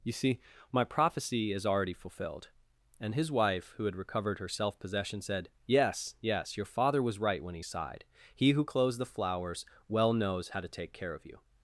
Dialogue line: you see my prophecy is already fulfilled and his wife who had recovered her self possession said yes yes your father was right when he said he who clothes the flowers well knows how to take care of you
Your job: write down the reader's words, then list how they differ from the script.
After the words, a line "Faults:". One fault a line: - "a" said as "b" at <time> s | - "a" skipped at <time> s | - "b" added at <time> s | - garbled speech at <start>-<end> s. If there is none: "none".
you see my prophecy is already fulfilled and his wife who had recovered her self possession said yes yes your father was right when he sighed he who clothes the flowers well knows how to take care of you
Faults:
- "said" said as "sighed" at 7.6 s